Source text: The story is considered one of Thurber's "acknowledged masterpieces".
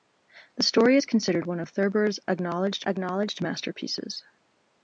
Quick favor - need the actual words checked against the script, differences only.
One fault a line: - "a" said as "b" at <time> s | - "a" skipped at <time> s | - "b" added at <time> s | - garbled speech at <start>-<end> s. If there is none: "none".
- "acknowledged" added at 2.8 s